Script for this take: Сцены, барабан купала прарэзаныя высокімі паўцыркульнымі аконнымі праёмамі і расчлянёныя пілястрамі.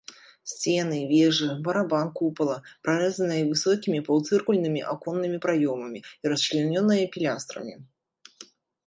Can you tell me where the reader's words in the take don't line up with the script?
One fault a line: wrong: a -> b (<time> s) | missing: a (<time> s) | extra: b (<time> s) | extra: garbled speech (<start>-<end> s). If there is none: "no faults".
extra: вежы (1.1 s)